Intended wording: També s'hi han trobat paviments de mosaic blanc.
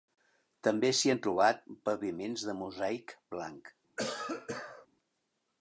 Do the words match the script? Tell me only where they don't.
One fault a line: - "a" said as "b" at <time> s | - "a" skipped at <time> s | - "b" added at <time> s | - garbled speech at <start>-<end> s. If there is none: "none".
none